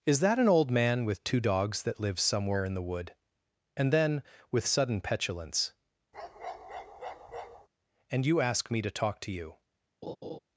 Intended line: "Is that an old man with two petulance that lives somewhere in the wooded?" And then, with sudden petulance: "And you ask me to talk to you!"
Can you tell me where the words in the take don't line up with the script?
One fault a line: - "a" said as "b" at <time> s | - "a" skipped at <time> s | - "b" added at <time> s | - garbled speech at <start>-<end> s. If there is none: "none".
- "petulance" said as "dogs" at 1.4 s
- "wooded" said as "wood" at 2.8 s